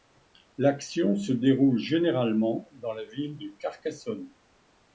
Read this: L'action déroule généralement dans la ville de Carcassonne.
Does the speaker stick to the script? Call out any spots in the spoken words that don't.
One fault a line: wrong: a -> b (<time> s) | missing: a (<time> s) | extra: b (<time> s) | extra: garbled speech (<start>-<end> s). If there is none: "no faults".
extra: se (1.1 s)